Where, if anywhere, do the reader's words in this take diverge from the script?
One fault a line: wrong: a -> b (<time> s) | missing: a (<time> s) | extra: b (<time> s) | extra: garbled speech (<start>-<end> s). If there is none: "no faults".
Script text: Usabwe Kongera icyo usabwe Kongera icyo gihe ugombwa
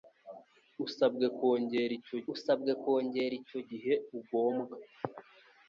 no faults